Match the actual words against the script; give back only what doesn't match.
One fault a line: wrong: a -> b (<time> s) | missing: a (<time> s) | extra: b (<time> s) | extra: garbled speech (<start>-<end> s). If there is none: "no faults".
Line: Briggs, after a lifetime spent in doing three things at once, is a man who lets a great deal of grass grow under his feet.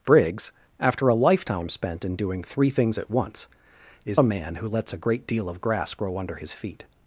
no faults